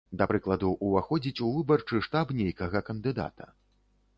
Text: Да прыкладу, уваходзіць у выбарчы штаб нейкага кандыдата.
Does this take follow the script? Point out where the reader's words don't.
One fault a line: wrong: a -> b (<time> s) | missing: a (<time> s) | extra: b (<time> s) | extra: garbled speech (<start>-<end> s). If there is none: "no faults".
no faults